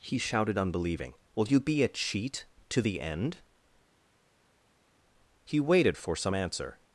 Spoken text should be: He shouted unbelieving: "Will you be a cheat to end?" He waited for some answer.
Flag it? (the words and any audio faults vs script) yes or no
yes